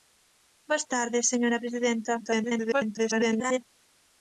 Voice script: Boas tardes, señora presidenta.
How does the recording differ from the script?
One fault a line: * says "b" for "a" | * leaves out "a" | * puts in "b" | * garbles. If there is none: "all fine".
* garbles